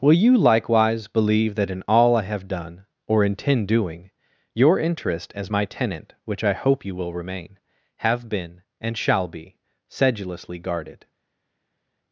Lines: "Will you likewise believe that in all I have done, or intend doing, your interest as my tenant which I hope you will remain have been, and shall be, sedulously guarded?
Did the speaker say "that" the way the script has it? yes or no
yes